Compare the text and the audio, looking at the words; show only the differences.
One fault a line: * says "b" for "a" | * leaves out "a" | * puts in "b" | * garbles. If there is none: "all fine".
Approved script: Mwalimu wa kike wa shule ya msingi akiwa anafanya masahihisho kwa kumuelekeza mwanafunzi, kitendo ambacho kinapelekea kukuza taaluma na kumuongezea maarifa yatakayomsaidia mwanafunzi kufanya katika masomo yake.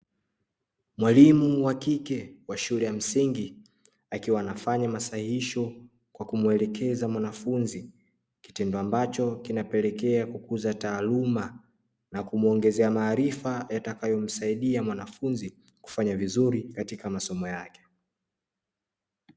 * puts in "vizuri"